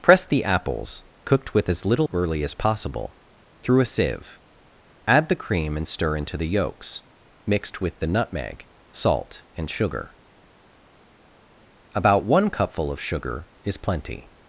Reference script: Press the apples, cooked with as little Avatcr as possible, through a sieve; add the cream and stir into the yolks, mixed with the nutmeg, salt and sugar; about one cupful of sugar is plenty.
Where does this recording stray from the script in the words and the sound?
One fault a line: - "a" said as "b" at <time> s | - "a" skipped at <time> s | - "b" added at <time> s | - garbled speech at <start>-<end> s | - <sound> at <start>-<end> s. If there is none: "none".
- "Avatcr" said as "Early" at 2.1 s